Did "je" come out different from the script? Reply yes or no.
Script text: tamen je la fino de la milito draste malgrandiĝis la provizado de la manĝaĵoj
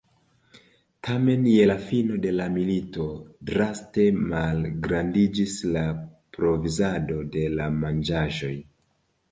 no